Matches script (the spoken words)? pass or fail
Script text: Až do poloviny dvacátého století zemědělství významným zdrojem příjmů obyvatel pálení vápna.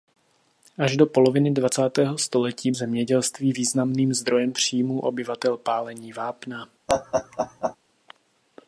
pass